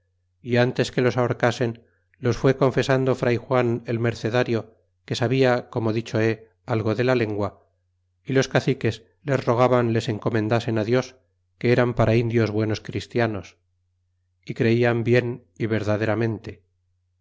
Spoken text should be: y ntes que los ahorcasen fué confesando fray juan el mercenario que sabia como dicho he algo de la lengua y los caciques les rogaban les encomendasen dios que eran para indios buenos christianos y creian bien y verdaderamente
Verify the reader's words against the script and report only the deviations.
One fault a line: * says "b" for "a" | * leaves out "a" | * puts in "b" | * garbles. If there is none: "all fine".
* puts in "los"